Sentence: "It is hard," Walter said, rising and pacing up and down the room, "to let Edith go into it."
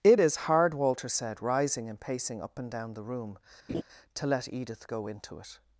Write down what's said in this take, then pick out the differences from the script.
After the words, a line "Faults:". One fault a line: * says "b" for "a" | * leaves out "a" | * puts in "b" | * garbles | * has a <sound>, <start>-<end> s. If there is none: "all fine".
"It is hard," Walter said, rising and pacing up and down the room, "to let Edith go into it."
Faults:
* has a laugh, 3.7-3.8 s